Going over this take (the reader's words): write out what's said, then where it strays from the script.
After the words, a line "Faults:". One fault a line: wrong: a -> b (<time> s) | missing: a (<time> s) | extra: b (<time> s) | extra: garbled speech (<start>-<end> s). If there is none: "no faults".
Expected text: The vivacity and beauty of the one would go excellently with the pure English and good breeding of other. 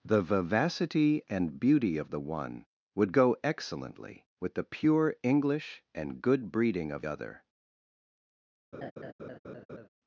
The vivacity and beauty of the one would go excellently with the pure English and good breeding of other.
Faults:
no faults